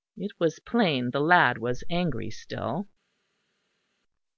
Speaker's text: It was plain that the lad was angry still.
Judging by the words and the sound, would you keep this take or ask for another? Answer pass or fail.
fail